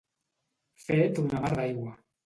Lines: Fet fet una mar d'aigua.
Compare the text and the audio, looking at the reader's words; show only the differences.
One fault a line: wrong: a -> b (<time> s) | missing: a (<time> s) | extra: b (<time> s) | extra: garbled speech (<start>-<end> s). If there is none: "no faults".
missing: fet (1.2 s)